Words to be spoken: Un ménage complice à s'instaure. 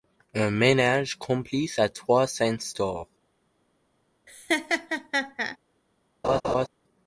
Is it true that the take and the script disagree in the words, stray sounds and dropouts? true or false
true